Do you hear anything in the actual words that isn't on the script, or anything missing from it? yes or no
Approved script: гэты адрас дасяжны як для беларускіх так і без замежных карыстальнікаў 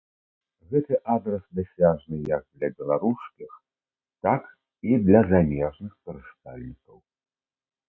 yes